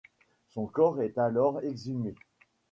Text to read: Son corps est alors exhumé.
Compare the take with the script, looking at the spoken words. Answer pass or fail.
pass